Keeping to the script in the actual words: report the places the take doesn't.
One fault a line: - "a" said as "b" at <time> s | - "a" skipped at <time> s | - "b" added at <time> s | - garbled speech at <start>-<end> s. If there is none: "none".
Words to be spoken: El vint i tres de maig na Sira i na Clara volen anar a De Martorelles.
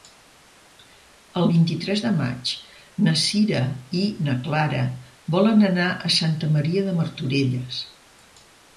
- "Santa Maria" added at 6.2 s